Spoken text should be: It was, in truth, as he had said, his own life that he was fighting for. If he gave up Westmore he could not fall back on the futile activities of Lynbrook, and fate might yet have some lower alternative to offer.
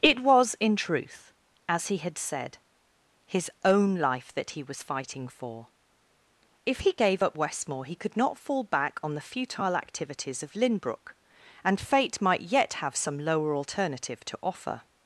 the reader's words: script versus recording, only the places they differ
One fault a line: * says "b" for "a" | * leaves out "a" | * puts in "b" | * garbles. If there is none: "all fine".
all fine